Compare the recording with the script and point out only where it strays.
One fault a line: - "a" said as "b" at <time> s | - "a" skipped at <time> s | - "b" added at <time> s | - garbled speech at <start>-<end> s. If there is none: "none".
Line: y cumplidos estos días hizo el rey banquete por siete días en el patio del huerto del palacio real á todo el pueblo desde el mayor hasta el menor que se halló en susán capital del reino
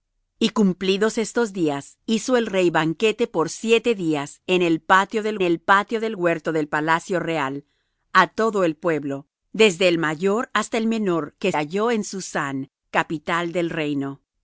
- "el patio del" added at 5.4 s
- "se" skipped at 11.5 s